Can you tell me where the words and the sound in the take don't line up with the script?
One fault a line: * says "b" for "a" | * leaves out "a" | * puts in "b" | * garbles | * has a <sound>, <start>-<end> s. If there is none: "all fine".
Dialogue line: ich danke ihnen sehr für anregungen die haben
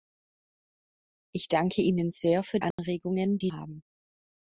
* has a dropout, 2.7-2.8 s